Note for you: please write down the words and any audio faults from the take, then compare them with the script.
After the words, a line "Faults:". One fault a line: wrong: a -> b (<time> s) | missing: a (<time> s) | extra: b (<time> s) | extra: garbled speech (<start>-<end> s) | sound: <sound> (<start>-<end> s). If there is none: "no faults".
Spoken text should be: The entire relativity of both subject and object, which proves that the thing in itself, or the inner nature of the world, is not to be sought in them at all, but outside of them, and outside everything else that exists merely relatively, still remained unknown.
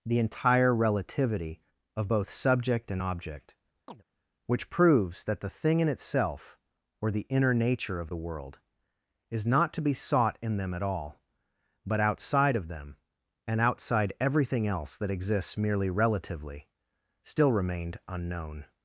The entire relativity of both subject and object, which proves that the thing in itself, or the inner nature of the world, is not to be sought in them at all, but outside of them, and outside everything else that exists merely relatively, still remained unknown.
Faults:
sound: chirp (3.9-4.0 s)